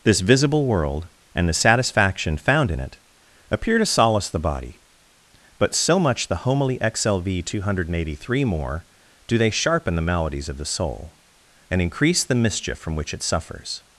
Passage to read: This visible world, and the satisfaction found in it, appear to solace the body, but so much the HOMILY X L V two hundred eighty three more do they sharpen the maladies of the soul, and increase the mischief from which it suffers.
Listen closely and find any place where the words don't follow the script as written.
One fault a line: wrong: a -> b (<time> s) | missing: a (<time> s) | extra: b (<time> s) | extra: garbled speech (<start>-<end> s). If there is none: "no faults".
no faults